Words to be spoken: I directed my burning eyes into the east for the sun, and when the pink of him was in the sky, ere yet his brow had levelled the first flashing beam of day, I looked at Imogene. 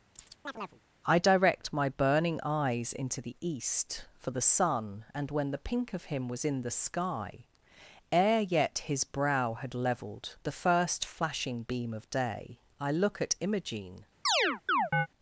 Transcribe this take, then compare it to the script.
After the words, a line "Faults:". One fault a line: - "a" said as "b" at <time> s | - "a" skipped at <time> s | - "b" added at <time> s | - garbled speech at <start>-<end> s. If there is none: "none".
I direct my burning eyes into the east for the sun, and when the pink of him was in the sky, ere yet his brow had levelled the first flashing beam of day, I look at Imogene.
Faults:
- "directed" said as "direct" at 1.2 s
- "looked" said as "look" at 12.9 s